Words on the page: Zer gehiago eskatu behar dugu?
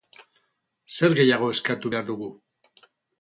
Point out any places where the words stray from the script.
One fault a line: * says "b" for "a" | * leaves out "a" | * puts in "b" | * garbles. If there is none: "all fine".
all fine